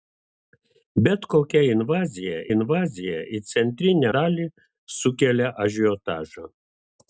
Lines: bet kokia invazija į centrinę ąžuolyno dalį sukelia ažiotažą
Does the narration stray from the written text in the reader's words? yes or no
yes